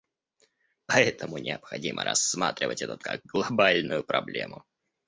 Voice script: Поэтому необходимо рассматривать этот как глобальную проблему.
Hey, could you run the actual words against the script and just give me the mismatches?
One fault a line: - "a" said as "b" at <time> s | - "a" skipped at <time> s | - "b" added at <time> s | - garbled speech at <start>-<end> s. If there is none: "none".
none